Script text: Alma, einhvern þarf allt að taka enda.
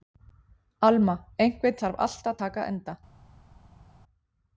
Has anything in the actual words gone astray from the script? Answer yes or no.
no